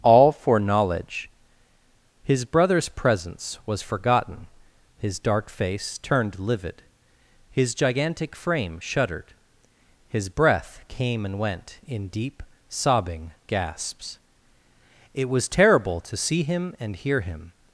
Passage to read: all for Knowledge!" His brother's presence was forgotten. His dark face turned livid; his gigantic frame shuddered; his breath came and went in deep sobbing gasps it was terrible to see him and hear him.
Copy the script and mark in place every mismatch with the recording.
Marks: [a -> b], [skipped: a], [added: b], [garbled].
all for Knowledge!" His brother's presence was forgotten. His dark face turned livid; his gigantic frame shuddered; his breath came and went in deep sobbing gasps it was terrible to see him and hear him.